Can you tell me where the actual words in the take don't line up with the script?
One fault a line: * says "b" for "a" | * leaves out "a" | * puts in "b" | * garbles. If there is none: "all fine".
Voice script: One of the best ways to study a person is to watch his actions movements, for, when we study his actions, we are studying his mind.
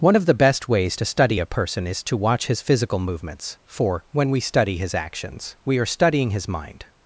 * says "physical" for "actions"